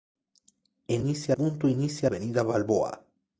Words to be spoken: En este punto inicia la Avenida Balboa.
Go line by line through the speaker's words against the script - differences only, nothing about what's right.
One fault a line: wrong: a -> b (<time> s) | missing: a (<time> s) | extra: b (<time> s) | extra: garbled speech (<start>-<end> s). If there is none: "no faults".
wrong: este -> inicia (0.9 s)
missing: la (2.1 s)